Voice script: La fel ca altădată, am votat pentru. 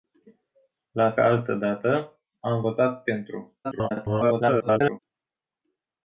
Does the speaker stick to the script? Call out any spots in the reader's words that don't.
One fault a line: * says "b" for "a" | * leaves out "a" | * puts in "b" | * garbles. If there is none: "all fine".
* leaves out "fel"
* garbles